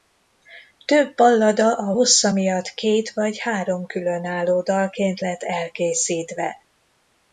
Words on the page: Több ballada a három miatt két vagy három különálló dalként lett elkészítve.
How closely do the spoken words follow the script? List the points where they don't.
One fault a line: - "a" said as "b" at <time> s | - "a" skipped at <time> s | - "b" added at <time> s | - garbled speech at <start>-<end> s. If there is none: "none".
- "három" said as "hossza" at 1.9 s